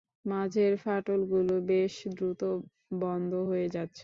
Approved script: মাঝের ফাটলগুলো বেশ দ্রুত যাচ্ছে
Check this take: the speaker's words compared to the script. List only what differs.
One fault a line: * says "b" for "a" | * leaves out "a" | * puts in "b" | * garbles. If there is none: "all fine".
* puts in "বন্ধ হয়ে"